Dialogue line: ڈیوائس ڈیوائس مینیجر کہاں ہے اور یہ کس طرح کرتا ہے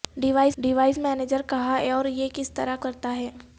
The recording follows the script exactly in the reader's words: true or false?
true